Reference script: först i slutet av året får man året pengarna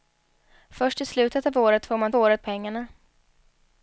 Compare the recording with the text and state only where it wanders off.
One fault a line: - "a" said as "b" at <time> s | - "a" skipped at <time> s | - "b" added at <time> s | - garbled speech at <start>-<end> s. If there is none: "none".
none